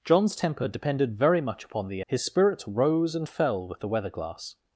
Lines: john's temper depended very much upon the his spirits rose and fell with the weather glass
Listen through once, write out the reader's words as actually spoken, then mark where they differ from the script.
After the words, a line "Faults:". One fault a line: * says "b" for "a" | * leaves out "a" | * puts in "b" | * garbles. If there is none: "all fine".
john's temper depended very much upon the his spirits rose and fell with the weather glass
Faults:
all fine